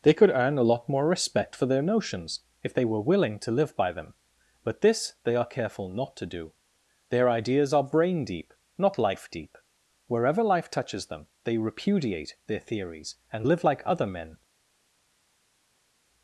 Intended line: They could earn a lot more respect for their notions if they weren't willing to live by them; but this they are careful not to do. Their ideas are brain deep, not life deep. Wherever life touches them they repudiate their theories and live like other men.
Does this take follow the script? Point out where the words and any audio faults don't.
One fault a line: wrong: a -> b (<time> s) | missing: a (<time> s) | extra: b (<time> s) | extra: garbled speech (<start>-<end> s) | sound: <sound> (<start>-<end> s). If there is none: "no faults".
wrong: weren't -> were (2.9 s)